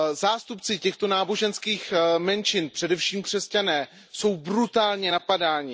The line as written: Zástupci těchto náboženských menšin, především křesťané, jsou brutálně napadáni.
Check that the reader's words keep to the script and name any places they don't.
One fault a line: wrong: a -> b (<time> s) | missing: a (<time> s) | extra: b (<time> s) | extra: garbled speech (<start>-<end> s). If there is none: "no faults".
no faults